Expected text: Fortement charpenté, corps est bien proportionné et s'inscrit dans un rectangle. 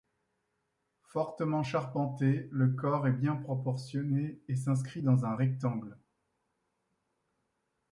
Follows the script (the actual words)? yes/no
no